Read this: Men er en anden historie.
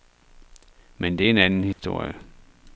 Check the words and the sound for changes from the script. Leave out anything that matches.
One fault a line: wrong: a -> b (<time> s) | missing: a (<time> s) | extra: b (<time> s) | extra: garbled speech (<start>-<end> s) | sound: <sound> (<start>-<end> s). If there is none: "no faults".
extra: det (1.2 s)
sound: dropout (1.7-1.8 s)